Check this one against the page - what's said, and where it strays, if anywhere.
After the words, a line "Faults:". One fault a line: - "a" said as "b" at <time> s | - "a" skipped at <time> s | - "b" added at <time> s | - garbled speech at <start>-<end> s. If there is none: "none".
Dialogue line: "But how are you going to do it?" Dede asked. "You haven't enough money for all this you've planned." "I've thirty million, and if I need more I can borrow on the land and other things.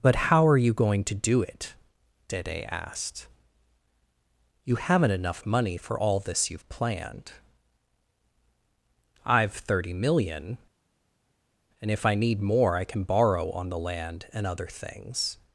"But how are you going to do it?" Dede asked. "You haven't enough money for all this you've planned." "I've thirty million, and if I need more I can borrow on the land and other things.
Faults:
none